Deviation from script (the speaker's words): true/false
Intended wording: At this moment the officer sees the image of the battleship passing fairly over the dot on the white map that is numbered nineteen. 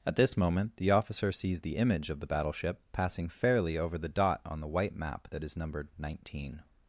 false